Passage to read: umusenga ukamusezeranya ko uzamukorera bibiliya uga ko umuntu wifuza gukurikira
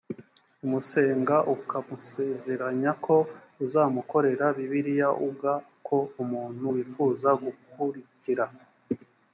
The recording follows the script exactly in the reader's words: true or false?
true